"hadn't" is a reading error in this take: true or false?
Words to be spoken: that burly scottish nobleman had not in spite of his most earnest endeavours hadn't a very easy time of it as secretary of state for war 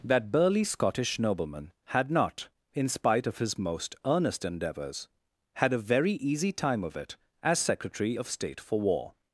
true